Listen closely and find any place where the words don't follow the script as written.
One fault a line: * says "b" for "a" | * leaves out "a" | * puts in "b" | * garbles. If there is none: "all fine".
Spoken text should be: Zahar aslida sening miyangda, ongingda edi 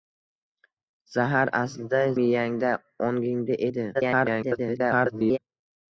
* leaves out "sening"
* garbles